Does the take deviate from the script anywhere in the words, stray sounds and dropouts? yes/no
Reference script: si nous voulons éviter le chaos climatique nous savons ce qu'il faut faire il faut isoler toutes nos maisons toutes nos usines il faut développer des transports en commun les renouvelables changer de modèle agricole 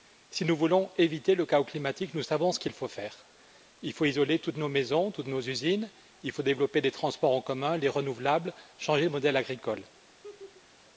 yes